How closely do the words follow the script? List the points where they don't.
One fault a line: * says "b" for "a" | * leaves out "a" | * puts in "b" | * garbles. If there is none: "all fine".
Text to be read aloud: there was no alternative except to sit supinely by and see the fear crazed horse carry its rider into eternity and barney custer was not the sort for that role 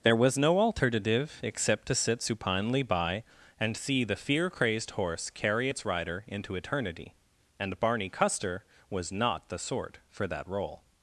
all fine